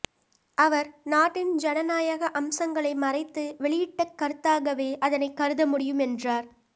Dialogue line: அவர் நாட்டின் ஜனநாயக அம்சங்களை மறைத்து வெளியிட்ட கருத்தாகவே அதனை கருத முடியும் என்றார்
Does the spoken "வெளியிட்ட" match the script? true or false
true